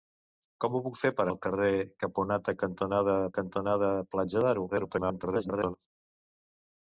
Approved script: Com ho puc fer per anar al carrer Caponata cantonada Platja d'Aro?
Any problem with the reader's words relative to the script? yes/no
yes